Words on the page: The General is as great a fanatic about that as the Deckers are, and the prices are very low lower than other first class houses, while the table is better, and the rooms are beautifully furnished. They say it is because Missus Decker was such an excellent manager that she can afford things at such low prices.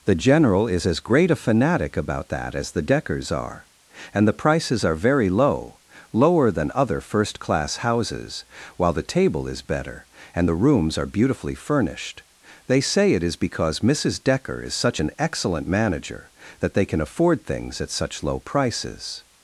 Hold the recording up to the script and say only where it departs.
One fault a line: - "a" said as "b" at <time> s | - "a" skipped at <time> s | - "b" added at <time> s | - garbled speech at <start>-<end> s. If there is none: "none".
- "was" said as "is" at 14.6 s
- "she" said as "they" at 16.7 s